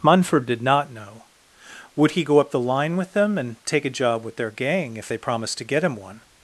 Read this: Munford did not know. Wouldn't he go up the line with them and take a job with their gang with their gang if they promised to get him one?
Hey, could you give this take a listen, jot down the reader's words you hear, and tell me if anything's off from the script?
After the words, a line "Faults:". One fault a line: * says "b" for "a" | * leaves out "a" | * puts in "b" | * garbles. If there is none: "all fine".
Munford did not know. Would he go up the line with them and take a job with their gang if they promised to get him one?
Faults:
* says "Would" for "Wouldn't"
* leaves out "with their gang"